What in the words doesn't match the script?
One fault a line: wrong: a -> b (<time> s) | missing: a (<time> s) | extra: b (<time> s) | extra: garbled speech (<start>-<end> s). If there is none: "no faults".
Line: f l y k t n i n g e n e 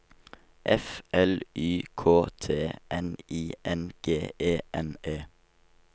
no faults